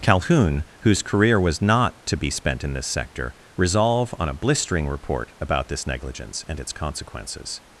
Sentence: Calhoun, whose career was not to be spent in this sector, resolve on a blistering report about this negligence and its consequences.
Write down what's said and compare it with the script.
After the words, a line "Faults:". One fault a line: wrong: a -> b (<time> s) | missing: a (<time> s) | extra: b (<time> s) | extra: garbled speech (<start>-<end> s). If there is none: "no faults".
Calhoun, whose career was not to be spent in this sector, resolve on a blistering report about this negligence and its consequences.
Faults:
no faults